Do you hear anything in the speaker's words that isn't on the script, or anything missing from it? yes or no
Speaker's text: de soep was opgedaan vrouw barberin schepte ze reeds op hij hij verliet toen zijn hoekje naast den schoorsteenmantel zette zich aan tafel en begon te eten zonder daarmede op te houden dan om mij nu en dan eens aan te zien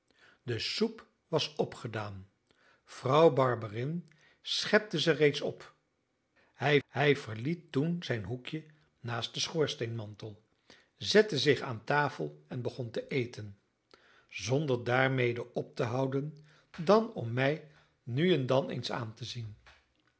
no